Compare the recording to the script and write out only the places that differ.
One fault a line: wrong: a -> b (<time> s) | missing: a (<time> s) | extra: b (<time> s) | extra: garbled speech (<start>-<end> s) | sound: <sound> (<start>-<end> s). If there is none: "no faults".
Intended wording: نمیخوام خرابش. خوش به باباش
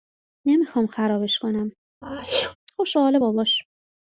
extra: کنم (1.4 s)
sound: sneeze (2.0-2.6 s)
extra: حال (3.0 s)